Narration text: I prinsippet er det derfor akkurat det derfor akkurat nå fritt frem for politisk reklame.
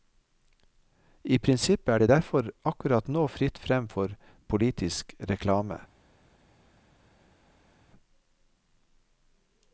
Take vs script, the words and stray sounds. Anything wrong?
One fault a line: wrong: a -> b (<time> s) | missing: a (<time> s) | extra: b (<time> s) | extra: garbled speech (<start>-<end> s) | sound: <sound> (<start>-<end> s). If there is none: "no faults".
missing: det derfor akkurat (3.1 s)